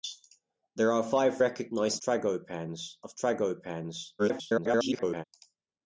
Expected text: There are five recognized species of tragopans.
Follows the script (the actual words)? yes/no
no